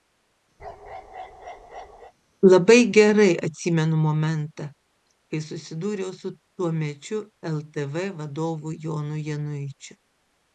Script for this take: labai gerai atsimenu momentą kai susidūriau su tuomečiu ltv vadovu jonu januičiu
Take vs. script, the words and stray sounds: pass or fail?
fail